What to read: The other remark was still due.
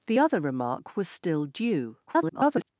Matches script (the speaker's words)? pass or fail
fail